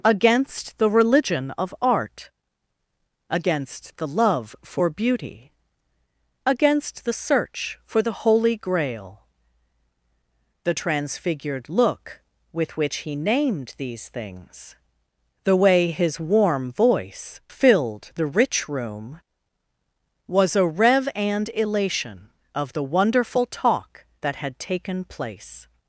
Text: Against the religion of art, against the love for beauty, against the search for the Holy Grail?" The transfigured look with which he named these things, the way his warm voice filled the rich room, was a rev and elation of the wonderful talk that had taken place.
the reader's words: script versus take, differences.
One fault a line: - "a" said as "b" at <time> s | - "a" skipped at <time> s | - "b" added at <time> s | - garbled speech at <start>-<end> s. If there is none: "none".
none